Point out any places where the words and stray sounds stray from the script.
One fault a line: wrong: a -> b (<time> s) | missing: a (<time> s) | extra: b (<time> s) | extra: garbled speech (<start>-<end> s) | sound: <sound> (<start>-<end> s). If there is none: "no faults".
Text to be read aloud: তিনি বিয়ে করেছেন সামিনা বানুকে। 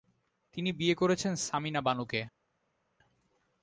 no faults